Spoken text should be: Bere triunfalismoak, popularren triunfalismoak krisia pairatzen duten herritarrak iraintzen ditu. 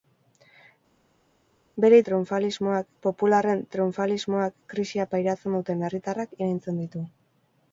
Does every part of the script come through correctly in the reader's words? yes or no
yes